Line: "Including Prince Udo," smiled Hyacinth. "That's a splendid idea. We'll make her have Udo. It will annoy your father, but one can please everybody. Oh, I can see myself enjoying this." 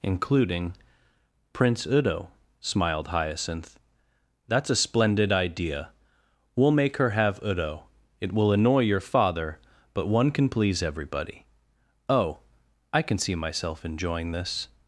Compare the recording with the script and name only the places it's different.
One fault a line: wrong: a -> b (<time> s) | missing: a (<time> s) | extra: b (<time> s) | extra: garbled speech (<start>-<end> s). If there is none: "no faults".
no faults